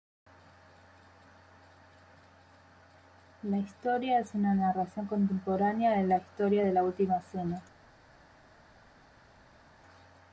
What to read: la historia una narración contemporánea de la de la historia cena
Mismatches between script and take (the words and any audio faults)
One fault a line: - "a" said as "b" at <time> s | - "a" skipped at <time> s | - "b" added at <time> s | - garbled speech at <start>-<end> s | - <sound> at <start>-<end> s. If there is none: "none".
- "es" added at 4.2 s
- "historia" added at 6.2 s
- "historia" said as "última" at 6.8 s